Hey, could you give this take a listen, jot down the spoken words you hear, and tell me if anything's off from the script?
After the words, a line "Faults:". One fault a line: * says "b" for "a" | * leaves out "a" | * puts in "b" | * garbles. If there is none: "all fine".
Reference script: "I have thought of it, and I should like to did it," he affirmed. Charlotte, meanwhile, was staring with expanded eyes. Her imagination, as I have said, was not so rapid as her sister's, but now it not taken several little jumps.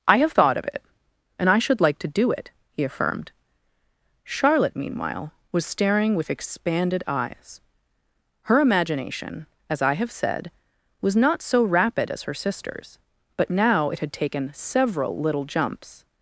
"I have thought of it, and I should like to do it," he affirmed. Charlotte, meanwhile, was staring with expanded eyes. Her imagination, as I have said, was not so rapid as her sister's, but now it had taken several little jumps.
Faults:
* says "do" for "did"
* says "had" for "not"